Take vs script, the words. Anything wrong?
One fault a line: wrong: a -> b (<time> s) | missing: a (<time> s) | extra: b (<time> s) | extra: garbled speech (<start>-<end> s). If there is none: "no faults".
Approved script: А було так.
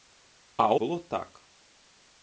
no faults